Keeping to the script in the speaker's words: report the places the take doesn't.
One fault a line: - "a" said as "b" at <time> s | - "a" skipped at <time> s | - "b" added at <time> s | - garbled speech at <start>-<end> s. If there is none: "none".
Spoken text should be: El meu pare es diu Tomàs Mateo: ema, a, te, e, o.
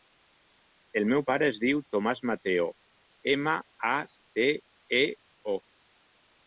none